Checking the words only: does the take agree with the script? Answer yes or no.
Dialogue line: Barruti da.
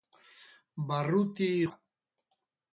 yes